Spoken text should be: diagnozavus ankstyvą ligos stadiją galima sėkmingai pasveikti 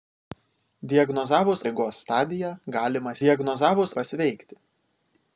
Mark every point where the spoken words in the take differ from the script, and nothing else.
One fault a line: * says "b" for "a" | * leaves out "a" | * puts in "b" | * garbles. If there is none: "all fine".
* leaves out "ankstyvą"
* says "diagnozavus" for "sėkmingai"